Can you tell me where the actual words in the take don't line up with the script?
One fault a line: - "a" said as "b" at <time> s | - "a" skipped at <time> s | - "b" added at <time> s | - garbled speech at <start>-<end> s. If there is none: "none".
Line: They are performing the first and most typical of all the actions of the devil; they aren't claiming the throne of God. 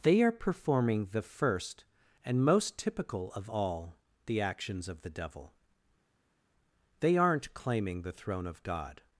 none